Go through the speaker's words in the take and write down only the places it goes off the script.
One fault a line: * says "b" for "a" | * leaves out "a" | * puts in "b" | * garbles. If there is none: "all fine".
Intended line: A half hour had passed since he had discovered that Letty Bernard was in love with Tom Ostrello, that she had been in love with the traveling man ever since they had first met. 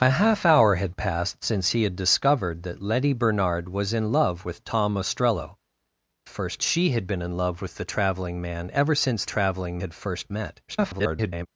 * says "first" for "that"
* says "traveling" for "they"
* garbles